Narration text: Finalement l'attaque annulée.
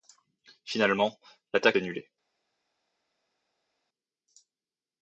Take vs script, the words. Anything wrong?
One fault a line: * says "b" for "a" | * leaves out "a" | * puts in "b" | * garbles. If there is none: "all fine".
all fine